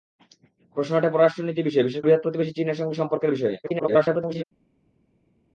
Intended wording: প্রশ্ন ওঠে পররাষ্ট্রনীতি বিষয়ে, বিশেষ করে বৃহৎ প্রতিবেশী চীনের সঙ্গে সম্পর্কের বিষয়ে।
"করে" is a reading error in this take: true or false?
true